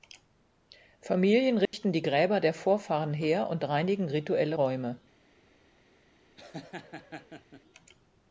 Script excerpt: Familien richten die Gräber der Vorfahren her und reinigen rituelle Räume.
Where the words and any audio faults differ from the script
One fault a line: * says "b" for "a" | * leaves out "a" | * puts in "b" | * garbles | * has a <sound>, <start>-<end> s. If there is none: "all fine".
* has a dropout, 1.7-1.7 s
* has a laugh, 6.4-7.6 s